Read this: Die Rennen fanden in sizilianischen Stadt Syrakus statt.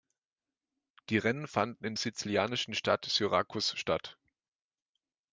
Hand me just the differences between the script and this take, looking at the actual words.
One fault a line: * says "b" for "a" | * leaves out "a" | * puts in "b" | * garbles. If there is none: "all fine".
all fine